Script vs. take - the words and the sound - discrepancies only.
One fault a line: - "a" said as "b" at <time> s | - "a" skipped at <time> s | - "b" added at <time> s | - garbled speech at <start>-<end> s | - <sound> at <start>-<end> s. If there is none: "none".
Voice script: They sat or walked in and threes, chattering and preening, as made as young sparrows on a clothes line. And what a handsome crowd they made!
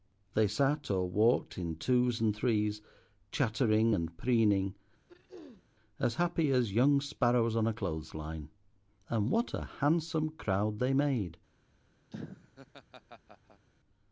- "twos" added at 1.8 s
- throat clearing at 5.1-5.7 s
- "made" said as "happy" at 6.1 s
- laugh at 12.1-13.7 s